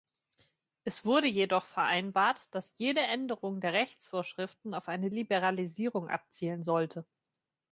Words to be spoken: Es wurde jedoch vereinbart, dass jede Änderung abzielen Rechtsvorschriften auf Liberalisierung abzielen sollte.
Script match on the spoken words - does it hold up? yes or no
no